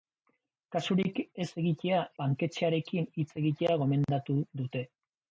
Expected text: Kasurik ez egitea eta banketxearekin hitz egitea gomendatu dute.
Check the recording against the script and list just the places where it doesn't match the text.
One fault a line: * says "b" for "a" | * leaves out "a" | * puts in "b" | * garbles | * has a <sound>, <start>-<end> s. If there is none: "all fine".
* leaves out "eta"